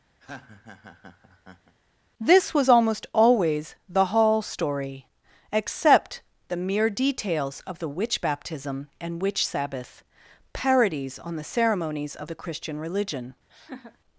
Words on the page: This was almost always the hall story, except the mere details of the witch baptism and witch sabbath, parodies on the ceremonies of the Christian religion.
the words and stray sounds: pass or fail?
fail